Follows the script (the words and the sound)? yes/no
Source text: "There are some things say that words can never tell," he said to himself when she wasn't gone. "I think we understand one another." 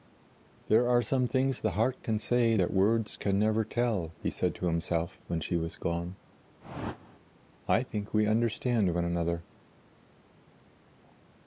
no